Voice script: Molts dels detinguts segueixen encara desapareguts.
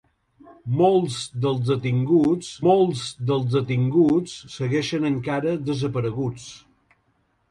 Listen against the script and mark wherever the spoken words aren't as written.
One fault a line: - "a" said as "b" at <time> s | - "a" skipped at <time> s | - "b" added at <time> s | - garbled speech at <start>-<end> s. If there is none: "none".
- "molts dels detinguts" added at 2.6 s